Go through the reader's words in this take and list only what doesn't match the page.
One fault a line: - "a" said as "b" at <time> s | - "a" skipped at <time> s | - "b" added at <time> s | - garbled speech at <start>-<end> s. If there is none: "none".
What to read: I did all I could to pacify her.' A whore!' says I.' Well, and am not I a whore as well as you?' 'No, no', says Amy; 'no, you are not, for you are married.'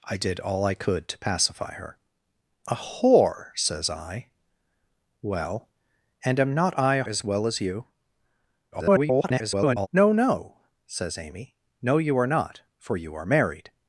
- "whore" skipped at 7.0 s
- garbled speech at 8.7-9.9 s